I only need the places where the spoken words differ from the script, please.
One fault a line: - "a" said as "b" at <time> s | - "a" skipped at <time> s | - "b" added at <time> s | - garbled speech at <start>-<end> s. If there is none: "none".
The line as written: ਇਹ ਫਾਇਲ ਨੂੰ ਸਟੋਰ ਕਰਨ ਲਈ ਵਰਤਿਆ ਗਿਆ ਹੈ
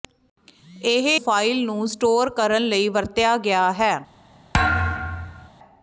none